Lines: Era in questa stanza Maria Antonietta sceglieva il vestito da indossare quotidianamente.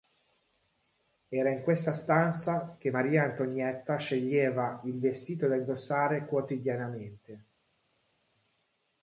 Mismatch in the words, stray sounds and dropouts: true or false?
true